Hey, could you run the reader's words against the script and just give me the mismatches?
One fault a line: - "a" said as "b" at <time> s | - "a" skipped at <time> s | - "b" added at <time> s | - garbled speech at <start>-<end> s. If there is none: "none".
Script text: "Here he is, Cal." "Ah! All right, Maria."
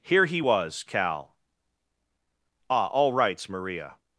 - "is" said as "was" at 0.4 s
- "right" said as "rights" at 3.1 s